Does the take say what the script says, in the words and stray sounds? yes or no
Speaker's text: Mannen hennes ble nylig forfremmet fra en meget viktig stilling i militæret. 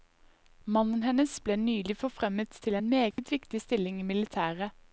no